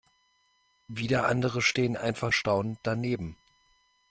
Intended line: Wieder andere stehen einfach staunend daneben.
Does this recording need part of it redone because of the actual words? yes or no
no